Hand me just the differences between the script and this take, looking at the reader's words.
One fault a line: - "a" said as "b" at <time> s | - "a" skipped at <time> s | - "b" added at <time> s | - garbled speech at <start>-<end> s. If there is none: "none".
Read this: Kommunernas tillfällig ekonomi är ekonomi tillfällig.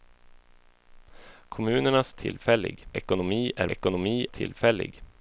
none